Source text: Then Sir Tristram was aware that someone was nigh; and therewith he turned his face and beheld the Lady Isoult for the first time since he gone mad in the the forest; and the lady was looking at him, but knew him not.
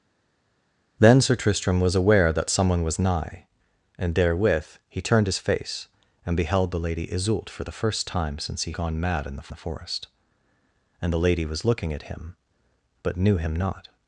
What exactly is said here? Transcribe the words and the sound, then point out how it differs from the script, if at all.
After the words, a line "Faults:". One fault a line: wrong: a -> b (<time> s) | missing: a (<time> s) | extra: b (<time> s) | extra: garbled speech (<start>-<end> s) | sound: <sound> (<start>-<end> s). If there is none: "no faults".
Then Sir Tristram was aware that someone was nigh; and therewith he turned his face and beheld the Lady Isoult for the first time since he gone mad in the the forest; and the lady was looking at him, but knew him not.
Faults:
no faults